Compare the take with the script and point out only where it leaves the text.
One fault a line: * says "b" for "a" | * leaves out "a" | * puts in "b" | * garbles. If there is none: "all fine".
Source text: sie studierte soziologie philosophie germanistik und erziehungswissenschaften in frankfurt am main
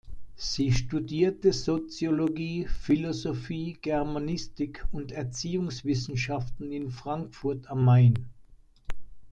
all fine